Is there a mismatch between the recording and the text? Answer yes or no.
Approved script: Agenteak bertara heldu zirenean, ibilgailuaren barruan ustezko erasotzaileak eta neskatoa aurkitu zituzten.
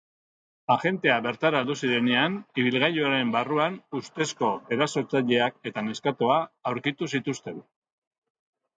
no